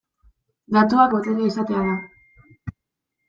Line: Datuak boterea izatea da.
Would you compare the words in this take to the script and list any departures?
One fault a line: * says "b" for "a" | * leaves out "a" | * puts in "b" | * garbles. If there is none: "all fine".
all fine